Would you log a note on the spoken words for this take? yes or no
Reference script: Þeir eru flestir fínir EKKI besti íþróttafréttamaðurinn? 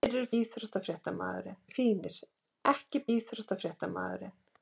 yes